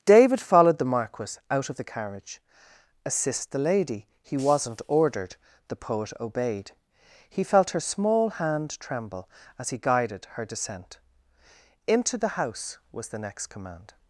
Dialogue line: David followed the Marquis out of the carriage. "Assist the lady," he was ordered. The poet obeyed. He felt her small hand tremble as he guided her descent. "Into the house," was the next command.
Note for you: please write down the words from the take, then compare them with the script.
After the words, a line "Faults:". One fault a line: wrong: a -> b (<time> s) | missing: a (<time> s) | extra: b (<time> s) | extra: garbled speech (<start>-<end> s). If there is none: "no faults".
David followed the Marquis out of the carriage. "Assist the lady," he wasn't ordered. The poet obeyed. He felt her small hand tremble as he guided her descent. "Into the house," was the next command.
Faults:
wrong: was -> wasn't (4.4 s)